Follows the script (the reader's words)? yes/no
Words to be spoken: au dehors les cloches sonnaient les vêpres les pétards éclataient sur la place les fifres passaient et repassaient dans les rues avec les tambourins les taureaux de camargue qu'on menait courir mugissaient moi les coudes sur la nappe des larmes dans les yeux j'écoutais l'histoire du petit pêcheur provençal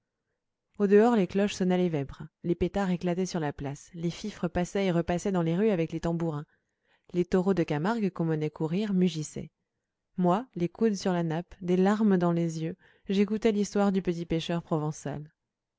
yes